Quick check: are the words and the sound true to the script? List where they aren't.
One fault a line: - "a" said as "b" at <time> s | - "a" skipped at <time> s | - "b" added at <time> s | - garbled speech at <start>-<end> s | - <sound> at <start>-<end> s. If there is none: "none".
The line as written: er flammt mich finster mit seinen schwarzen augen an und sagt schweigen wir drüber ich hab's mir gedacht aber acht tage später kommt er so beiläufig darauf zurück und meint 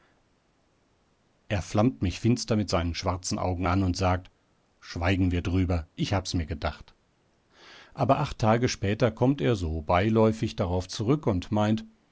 none